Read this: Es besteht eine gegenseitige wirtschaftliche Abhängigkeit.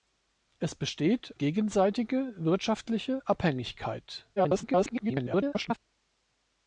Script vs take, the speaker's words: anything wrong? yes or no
yes